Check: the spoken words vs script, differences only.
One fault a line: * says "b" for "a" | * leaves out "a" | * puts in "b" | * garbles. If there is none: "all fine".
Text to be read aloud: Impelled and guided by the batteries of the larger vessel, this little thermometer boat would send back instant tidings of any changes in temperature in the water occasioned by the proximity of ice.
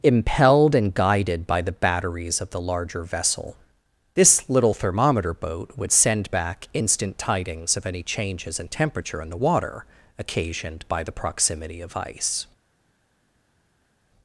all fine